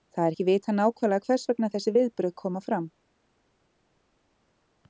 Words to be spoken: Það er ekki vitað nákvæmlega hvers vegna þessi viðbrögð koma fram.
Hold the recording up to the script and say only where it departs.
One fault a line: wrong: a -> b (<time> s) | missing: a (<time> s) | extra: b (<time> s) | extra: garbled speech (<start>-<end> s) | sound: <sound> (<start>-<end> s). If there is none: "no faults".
no faults